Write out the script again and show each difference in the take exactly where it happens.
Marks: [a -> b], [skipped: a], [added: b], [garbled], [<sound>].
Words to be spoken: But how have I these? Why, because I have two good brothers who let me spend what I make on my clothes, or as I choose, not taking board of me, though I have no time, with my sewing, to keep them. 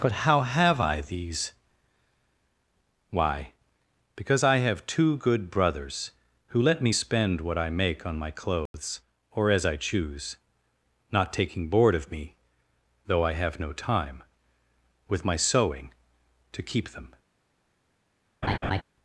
But how have I these? Why, because I have two good brothers who let me spend what I make on my clothes, [dropout] or as I choose, not taking board of me, though I have no time, with my sewing, to keep them. [laugh]